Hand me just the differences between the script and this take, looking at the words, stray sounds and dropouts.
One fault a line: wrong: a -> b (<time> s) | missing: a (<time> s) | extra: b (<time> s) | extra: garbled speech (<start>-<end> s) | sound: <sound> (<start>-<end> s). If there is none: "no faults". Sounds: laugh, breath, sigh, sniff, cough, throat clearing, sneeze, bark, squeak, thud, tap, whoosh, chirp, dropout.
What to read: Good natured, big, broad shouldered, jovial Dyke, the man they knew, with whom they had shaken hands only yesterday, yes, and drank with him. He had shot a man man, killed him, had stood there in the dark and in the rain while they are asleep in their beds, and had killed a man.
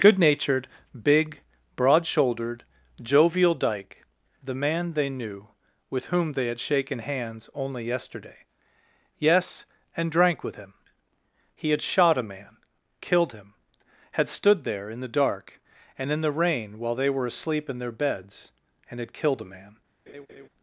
missing: man (12.6 s)
wrong: are -> were (17.1 s)
sound: laugh (20.1-20.5 s)